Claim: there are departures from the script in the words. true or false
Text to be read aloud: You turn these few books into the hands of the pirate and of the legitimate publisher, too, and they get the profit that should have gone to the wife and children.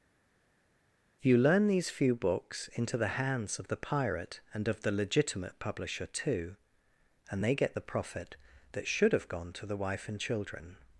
true